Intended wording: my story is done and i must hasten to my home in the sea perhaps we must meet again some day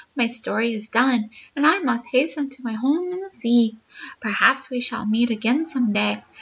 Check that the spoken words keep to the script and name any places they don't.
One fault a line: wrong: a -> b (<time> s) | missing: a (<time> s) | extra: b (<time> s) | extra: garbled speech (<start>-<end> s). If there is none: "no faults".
wrong: must -> shall (4.8 s)